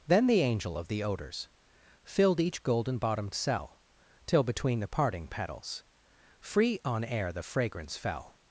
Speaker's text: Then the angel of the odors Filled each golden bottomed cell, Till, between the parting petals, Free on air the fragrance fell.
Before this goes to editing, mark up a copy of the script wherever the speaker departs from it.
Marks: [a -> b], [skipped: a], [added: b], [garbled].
Then the angel of the odors Filled each golden bottomed cell, Till, between the parting petals, Free on air the fragrance fell.